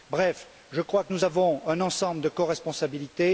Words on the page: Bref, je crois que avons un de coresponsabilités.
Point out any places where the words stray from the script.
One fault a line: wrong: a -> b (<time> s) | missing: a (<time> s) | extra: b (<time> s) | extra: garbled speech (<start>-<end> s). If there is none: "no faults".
extra: nous (1.1 s)
extra: ensemble (1.8 s)